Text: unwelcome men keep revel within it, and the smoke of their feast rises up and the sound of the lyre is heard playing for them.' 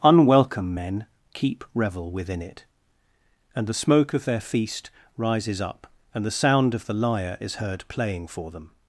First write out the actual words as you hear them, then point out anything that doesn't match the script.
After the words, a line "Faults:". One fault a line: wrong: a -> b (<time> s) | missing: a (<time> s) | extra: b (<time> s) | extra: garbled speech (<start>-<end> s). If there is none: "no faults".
unwelcome men keep revel within it, and the smoke of their feast rises up and the sound of the lyre is heard playing for them.'
Faults:
no faults